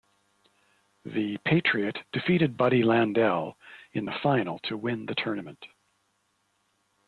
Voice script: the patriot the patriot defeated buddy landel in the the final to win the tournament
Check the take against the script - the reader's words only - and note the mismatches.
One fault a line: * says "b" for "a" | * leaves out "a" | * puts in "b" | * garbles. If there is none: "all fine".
* leaves out "the patriot"
* leaves out "the"